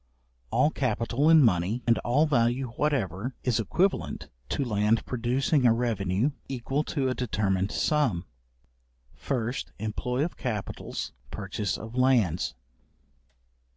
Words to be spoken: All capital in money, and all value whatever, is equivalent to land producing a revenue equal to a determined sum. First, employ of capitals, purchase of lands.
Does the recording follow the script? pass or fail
pass